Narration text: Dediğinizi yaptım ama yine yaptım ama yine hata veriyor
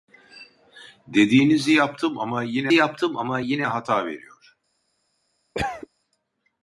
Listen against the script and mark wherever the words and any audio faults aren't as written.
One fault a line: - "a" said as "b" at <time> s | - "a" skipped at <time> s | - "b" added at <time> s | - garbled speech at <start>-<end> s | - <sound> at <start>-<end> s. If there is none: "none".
- cough at 5.5-5.9 s